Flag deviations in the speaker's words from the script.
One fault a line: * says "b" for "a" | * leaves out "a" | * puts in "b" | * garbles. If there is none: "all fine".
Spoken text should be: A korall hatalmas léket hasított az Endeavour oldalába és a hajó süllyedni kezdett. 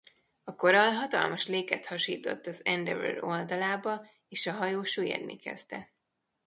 all fine